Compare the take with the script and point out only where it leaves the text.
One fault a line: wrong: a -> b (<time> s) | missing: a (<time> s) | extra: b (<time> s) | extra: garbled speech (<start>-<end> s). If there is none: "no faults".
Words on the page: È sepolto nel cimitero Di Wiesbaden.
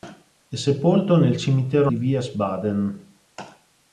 no faults